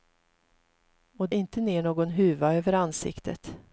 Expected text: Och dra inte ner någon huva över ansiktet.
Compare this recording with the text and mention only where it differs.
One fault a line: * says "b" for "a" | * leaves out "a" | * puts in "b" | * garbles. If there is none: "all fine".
* leaves out "dra"